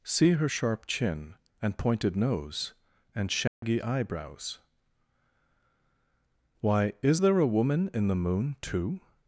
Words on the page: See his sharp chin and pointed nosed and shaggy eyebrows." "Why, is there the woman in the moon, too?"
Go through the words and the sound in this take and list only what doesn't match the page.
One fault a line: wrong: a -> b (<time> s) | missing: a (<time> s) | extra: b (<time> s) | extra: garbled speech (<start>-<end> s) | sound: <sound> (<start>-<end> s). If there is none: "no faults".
wrong: his -> her (0.3 s)
wrong: nosed -> nose (2.1 s)
sound: dropout (3.5-3.6 s)
wrong: the -> a (7.4 s)